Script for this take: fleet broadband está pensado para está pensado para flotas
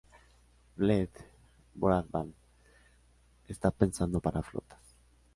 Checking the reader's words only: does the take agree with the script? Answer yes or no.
no